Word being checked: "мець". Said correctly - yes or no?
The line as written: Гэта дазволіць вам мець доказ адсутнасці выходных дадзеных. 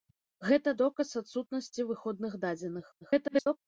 no